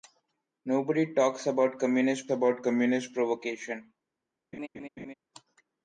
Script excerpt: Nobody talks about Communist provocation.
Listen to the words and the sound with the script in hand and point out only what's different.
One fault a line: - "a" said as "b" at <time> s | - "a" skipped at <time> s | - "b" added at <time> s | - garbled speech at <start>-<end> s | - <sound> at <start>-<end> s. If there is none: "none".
- "about Communist" added at 2.3 s
- laugh at 4.5-5.1 s